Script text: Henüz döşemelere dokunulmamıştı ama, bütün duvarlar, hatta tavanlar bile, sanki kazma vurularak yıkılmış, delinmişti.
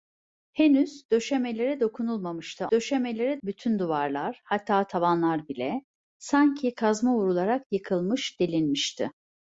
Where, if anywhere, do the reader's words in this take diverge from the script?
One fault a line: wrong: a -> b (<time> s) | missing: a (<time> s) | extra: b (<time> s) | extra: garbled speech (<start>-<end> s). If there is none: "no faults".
wrong: ama -> döşemelere (2.7 s)